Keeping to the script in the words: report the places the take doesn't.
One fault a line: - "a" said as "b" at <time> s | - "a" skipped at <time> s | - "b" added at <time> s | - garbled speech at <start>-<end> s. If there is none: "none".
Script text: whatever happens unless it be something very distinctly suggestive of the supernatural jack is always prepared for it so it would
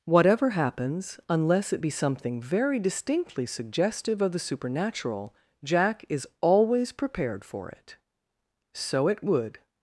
none